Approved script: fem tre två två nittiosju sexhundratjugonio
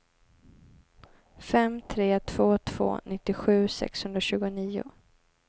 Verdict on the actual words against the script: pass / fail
pass